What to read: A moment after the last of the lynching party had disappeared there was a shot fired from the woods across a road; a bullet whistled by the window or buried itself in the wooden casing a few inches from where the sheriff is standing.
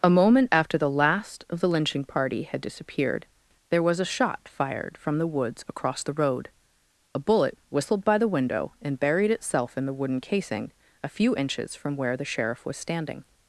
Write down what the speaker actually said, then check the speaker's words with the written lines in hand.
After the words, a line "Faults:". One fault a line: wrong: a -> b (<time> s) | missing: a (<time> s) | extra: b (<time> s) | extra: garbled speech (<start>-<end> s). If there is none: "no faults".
A moment after the last of the lynching party had disappeared there was a shot fired from the woods across the road; a bullet whistled by the window and buried itself in the wooden casing a few inches from where the sheriff was standing.
Faults:
wrong: a -> the (6.0 s)
wrong: or -> and (8.8 s)
wrong: is -> was (12.7 s)